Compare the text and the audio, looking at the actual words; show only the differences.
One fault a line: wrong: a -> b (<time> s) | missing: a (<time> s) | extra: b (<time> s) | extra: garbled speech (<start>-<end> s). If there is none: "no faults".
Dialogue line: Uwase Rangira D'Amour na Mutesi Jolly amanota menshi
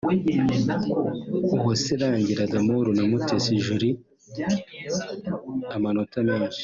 no faults